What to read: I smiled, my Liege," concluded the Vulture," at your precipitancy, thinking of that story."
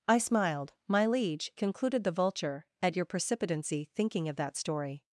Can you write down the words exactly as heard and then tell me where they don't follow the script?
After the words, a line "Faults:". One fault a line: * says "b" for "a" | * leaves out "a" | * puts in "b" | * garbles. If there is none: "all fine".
I smiled, my Liege," concluded the Vulture," at your precipitancy, thinking of that story."
Faults:
all fine